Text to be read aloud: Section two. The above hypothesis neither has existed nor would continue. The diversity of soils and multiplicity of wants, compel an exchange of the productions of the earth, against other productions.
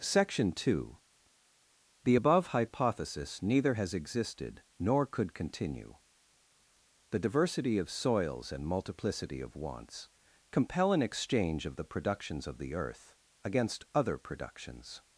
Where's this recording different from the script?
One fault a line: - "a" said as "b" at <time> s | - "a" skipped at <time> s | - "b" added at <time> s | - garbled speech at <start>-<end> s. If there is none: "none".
- "would" said as "could" at 5.1 s